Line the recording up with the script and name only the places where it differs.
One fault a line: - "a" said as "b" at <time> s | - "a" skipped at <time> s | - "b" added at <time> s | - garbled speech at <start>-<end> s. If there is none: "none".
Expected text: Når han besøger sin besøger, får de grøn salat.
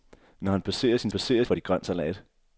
none